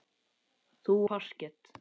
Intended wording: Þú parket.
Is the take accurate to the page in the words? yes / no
yes